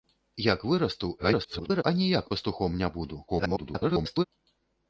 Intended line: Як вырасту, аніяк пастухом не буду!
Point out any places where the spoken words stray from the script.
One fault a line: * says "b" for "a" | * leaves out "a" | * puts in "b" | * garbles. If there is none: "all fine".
* garbles
* garbles